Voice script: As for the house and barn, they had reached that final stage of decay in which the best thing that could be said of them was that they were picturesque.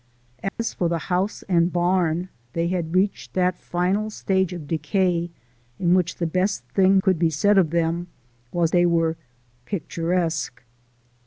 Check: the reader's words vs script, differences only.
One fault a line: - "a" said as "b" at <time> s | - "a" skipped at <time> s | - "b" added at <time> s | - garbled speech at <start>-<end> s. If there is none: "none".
- "that" skipped at 7.0 s
- "that" skipped at 8.7 s